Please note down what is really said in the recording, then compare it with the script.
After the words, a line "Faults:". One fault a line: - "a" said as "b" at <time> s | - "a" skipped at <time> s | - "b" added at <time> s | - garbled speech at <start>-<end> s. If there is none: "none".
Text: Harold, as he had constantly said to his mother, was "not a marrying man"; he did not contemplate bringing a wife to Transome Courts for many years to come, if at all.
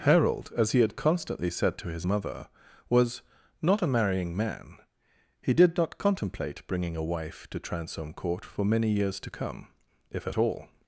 Harold, as he had constantly said to his mother, was "not a marrying man"; he did not contemplate bringing a wife to Transome Court for many years to come, if at all.
Faults:
- "Courts" said as "Court" at 8.1 s